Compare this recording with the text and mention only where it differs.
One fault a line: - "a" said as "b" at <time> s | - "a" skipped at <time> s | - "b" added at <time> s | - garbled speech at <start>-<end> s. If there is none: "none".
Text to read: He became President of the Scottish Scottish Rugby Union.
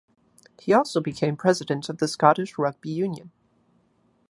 - "also" added at 0.7 s
- "Scottish" skipped at 2.6 s